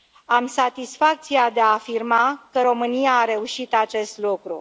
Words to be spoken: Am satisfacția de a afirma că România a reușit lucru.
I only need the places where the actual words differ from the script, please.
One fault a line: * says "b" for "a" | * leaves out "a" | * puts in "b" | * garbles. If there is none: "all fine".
* puts in "acest"